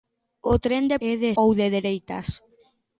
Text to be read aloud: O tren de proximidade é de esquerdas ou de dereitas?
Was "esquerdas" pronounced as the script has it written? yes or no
no